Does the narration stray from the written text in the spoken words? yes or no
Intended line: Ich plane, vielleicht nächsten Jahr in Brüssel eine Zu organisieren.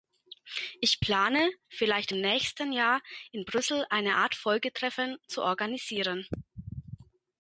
yes